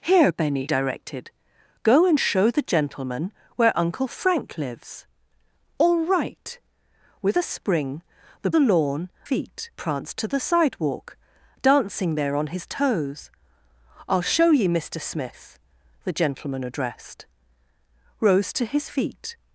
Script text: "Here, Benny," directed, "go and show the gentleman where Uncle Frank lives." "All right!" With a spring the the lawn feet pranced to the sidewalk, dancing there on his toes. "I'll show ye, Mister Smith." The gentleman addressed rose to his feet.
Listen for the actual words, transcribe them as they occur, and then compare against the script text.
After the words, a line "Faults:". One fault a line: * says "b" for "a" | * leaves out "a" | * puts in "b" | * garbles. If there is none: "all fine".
"Here, Benny," directed, "go and show the gentleman where Uncle Frank lives." "All right!" With a spring the the lawn feet pranced to the sidewalk, dancing there on his toes. "I'll show ye, Mister Smith." The gentleman addressed rose to his feet.
Faults:
all fine